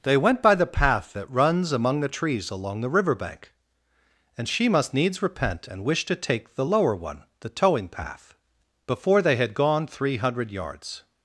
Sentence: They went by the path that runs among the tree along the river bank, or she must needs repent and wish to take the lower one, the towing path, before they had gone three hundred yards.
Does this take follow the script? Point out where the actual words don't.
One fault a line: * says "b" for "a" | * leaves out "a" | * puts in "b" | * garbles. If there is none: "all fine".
* says "trees" for "tree"
* says "and" for "or"